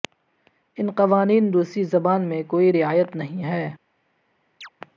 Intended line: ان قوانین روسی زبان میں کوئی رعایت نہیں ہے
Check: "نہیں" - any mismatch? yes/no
no